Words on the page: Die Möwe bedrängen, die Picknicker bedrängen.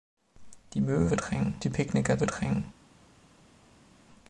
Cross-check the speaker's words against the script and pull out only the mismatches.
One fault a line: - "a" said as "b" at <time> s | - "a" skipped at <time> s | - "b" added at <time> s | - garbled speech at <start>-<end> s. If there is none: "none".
none